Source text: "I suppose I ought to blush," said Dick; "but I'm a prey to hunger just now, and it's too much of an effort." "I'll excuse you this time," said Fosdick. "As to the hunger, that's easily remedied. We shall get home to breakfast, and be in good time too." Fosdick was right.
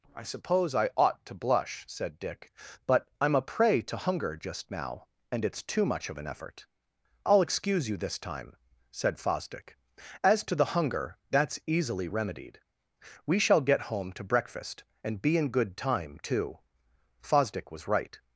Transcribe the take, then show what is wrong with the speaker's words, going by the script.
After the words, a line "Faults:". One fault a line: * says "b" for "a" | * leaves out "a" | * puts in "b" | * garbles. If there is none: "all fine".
"I suppose I ought to blush," said Dick; "but I'm a prey to hunger just now, and it's too much of an effort." "I'll excuse you this time," said Fosdick. "As to the hunger, that's easily remedied. We shall get home to breakfast, and be in good time too." Fosdick was right.
Faults:
all fine